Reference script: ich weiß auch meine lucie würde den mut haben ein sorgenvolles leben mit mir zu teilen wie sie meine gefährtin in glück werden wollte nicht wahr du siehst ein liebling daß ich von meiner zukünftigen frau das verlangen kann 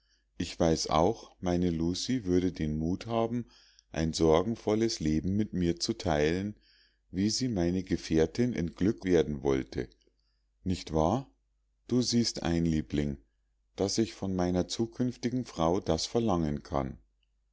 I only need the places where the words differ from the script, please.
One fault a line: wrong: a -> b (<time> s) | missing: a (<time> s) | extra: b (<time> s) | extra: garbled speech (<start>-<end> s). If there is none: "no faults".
no faults